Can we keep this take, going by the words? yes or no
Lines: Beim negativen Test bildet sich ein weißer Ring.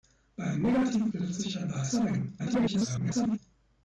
no